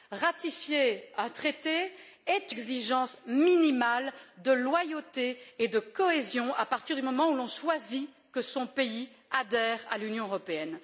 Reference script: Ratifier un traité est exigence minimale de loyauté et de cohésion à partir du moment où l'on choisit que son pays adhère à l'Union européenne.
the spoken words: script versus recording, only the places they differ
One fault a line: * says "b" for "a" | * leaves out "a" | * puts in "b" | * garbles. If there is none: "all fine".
all fine